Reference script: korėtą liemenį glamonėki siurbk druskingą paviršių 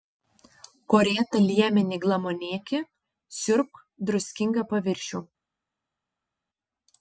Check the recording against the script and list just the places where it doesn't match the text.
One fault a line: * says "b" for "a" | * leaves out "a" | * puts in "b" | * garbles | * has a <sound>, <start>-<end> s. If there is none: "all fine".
all fine